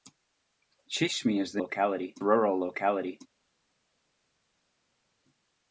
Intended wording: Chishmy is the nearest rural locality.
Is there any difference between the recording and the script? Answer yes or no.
yes